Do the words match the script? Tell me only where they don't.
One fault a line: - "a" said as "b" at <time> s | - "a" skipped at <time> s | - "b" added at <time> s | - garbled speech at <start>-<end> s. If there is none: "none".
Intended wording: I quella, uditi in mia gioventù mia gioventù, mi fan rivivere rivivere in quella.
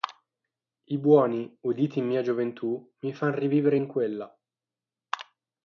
- "quella" said as "buoni" at 1.0 s
- "mia gioventù" skipped at 2.9 s
- "rivivere" skipped at 3.8 s